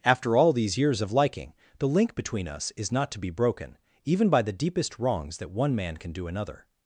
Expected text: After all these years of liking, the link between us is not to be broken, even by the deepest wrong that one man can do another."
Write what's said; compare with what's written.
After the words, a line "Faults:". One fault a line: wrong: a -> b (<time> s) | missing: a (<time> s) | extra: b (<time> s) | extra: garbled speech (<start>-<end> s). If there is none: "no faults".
After all these years of liking, the link between us is not to be broken, even by the deepest wrongs that one man can do another."
Faults:
wrong: wrong -> wrongs (5.0 s)